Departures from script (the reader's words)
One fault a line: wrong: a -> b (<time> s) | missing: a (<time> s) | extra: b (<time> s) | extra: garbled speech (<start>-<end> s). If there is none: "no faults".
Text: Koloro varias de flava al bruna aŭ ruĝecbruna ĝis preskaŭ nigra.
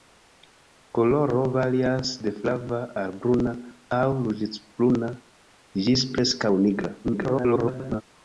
extra: garbled speech (7.0-8.0 s)